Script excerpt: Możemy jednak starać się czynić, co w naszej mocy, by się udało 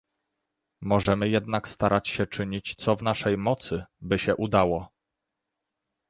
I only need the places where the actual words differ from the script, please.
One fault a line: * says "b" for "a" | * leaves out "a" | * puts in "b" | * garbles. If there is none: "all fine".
all fine